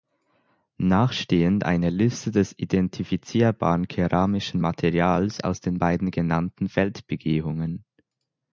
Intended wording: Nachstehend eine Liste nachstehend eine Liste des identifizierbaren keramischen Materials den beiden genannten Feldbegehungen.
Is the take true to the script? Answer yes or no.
no